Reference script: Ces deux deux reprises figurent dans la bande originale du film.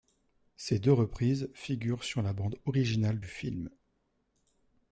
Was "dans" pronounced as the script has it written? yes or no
no